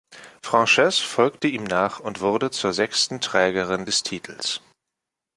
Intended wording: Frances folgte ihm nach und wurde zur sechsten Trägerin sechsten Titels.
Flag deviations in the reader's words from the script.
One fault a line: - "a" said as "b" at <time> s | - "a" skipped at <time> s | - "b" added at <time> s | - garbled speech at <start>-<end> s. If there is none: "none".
- "sechsten" said as "des" at 3.8 s